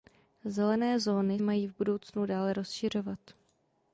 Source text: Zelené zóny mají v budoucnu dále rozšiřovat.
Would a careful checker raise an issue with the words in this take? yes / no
no